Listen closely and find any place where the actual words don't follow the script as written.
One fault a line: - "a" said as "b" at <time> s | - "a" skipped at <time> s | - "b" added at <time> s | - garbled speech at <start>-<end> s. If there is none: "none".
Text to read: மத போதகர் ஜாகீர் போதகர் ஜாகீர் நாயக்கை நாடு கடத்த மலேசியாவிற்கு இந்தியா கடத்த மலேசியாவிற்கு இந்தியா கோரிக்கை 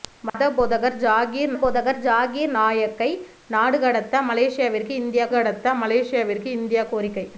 none